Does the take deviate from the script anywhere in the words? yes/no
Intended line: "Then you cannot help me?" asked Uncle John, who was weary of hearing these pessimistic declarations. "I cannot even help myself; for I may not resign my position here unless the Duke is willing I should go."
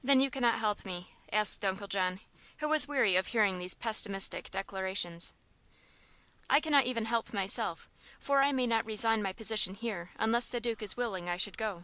no